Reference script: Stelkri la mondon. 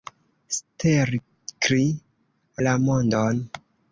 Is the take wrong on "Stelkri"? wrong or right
right